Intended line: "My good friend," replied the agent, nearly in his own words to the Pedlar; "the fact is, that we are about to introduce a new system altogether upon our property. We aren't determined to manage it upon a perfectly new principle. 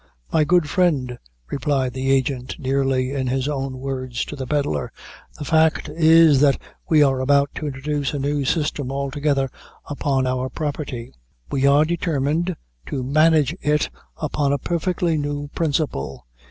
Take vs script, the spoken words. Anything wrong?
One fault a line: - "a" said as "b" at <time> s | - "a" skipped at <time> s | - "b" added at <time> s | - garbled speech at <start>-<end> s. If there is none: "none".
- "aren't" said as "are" at 11.7 s